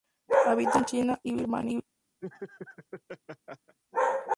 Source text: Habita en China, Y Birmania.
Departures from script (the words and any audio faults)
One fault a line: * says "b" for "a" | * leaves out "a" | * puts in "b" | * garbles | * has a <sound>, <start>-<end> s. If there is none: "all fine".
* has a laugh, 2.2-3.8 s